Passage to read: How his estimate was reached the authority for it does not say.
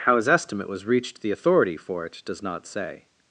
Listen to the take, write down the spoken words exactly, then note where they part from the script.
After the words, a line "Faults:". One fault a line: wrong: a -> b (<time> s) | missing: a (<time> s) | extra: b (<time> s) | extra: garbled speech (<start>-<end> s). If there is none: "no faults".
How his estimate was reached the authority for it does not say.
Faults:
no faults